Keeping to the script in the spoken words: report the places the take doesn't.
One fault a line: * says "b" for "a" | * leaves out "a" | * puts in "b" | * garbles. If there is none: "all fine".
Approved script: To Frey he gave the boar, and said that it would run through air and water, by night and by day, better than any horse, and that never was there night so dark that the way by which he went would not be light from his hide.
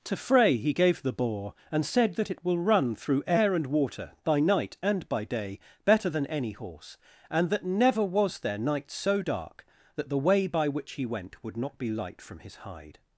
* says "will" for "would"